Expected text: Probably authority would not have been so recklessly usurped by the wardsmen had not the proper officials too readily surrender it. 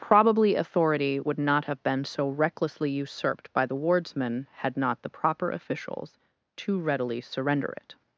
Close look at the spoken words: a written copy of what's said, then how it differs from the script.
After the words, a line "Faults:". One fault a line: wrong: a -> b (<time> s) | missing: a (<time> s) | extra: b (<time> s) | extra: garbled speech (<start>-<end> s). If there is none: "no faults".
Probably authority would not have been so recklessly usurped by the wardsmen had not the proper officials too readily surrender it.
Faults:
no faults